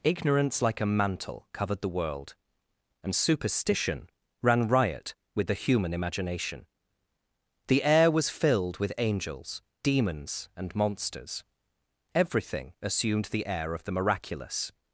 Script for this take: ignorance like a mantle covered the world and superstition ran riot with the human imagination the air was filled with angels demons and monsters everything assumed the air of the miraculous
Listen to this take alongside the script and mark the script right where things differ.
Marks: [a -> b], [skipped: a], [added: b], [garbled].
ignorance like a mantle covered the world and superstition ran riot with the human imagination the air was filled with angels demons and monsters everything assumed the air of the miraculous